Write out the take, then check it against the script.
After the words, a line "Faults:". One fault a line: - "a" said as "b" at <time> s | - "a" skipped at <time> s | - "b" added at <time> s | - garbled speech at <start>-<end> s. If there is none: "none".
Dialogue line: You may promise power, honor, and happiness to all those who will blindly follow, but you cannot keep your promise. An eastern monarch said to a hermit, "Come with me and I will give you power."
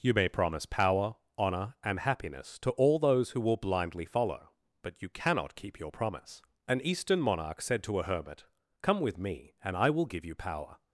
You may promise power, honor, and happiness to all those who will blindly follow, but you cannot keep your promise. An eastern monarch said to a hermit, "Come with me and I will give you power."
Faults:
none